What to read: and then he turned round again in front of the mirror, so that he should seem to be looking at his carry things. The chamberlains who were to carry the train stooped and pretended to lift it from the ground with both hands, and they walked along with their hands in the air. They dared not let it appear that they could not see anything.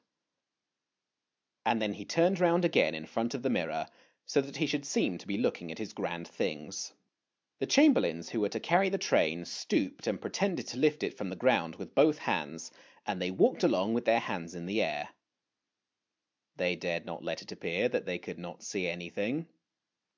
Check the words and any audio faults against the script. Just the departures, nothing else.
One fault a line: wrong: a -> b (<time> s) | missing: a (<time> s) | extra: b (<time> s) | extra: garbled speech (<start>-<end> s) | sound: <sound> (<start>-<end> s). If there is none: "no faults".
wrong: carry -> grand (5.9 s)